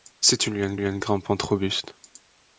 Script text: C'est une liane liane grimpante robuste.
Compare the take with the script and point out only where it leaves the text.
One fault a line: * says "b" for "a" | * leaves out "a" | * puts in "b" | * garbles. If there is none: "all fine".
all fine